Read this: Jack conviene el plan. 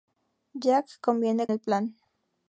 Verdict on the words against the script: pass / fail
pass